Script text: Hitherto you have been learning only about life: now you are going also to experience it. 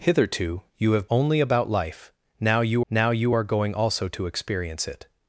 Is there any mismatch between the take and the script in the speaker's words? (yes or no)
yes